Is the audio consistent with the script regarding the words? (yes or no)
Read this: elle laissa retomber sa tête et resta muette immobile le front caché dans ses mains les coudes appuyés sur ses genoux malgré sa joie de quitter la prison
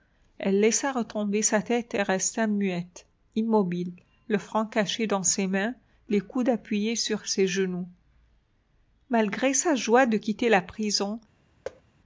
yes